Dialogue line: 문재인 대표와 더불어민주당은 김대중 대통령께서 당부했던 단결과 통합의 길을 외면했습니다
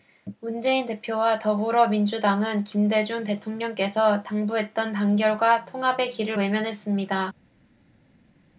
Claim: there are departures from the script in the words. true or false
false